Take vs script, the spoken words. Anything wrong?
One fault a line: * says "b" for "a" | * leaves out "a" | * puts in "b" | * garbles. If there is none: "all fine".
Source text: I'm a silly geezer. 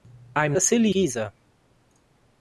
all fine